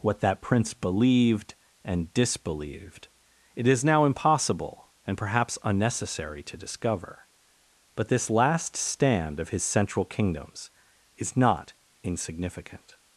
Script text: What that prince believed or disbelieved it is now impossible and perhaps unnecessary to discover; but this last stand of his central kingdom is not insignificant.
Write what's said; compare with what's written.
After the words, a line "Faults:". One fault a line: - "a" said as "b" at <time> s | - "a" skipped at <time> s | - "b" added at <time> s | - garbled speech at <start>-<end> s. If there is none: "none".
What that prince believed and disbelieved it is now impossible and perhaps unnecessary to discover; but this last stand of his central kingdoms is not insignificant.
Faults:
- "or" said as "and" at 1.8 s
- "kingdom" said as "kingdoms" at 10.1 s